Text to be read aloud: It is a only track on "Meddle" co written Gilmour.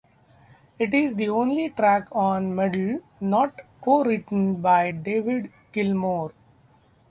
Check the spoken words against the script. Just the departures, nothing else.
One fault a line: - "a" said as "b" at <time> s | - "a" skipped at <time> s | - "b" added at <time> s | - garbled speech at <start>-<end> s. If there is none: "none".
- "a" said as "the" at 1.1 s
- "not" added at 3.2 s
- "by David" added at 4.6 s